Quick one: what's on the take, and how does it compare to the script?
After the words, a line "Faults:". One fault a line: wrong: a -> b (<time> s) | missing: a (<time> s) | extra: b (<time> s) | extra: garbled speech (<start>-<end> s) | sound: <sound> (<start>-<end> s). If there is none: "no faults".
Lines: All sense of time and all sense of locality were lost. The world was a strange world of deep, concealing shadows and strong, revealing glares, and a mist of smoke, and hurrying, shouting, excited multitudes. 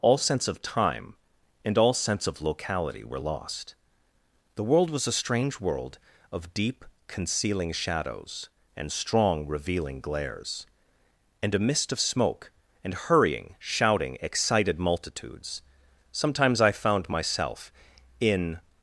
All sense of time and all sense of locality were lost. The world was a strange world of deep, concealing shadows and strong, revealing glares, and a mist of smoke, and hurrying, shouting, excited multitudes. Sometimes I found myself in
Faults:
extra: Sometimes I found myself in (16.1 s)